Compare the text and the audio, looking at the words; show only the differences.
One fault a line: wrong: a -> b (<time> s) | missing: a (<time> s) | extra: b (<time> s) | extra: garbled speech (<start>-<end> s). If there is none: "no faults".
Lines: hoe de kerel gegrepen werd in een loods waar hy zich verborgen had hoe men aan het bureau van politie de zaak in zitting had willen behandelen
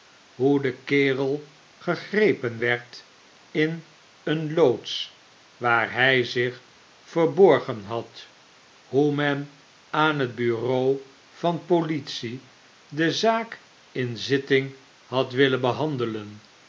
no faults